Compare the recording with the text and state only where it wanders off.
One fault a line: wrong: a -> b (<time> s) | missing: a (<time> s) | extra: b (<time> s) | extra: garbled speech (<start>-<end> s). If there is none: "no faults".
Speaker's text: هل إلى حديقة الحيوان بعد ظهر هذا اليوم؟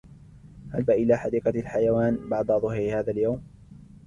no faults